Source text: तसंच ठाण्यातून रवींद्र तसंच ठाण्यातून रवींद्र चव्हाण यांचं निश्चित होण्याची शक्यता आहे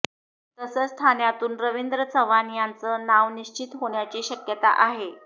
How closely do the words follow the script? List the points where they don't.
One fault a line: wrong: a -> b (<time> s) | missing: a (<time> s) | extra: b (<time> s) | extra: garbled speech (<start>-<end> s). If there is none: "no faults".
missing: तसंच ठाण्यातून रवींद्र (2.0 s)
extra: नाव (3.0 s)